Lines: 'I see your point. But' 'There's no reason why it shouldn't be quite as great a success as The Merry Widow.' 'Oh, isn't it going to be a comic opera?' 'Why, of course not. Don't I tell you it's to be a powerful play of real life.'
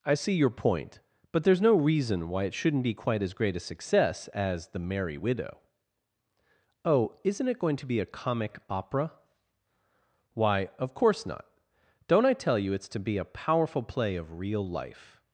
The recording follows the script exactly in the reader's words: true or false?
true